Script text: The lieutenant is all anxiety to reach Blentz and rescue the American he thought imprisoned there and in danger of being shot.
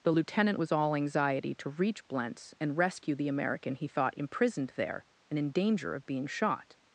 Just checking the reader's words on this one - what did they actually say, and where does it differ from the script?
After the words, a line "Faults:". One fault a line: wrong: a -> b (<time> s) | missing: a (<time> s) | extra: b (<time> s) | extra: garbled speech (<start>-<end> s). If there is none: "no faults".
The lieutenant was all anxiety to reach Blentz and rescue the American he thought imprisoned there and in danger of being shot.
Faults:
wrong: is -> was (0.6 s)